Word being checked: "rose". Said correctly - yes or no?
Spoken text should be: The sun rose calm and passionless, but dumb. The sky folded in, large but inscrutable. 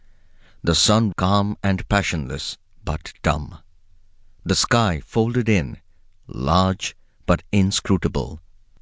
no